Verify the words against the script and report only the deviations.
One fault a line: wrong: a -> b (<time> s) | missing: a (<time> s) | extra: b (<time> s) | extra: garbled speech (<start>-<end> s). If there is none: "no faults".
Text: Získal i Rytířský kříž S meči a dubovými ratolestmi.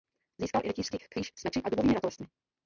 no faults